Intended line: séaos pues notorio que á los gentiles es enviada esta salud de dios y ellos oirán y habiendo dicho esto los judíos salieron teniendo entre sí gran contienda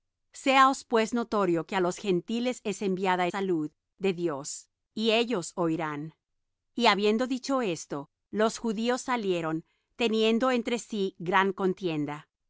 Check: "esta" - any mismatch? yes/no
yes